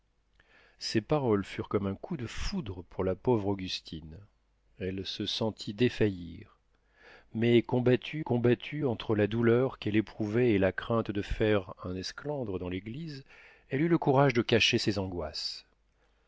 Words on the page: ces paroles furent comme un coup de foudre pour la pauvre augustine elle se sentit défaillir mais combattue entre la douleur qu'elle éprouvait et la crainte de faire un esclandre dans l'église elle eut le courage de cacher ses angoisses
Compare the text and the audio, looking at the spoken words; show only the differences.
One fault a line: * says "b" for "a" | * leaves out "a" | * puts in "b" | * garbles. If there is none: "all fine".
* puts in "combattue"